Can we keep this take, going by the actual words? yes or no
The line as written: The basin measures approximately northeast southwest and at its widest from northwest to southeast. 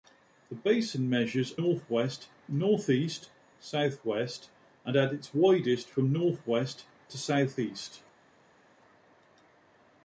no